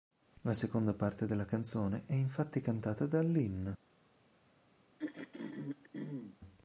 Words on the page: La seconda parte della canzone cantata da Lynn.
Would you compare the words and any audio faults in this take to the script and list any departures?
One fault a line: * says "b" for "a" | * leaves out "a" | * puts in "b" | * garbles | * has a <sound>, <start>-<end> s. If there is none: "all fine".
* puts in "è infatti"
* has a throat clearing, 5.0-6.4 s